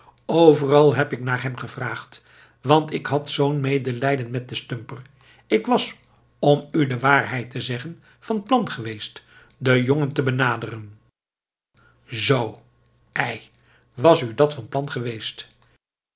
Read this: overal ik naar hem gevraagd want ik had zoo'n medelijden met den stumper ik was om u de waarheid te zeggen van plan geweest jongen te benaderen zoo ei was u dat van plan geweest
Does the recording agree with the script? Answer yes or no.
no